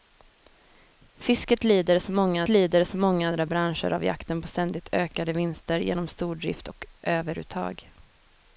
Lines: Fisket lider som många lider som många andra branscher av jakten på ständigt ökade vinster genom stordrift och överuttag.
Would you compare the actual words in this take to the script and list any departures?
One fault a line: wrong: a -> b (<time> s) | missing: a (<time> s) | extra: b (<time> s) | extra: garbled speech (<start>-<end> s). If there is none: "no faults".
no faults